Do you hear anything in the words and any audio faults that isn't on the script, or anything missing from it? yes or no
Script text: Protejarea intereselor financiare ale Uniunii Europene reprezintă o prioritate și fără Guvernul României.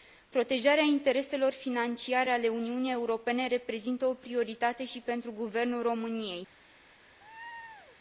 yes